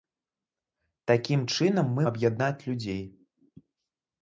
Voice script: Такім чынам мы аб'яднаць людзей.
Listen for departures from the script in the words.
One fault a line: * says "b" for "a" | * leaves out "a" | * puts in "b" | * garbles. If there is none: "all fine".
all fine